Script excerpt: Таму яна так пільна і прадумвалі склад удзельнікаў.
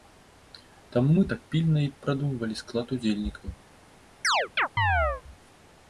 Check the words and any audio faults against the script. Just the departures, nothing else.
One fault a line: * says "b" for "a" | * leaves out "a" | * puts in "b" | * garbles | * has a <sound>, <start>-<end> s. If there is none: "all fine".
* says "мы" for "яна"
* has a chirp, 4.2-5.2 s